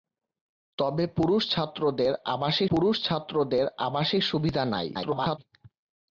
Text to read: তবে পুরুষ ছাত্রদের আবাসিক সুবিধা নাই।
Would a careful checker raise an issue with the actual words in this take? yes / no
yes